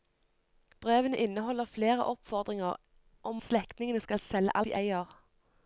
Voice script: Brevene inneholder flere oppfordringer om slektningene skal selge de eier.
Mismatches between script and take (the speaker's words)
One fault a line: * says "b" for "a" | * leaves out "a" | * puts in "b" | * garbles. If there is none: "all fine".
all fine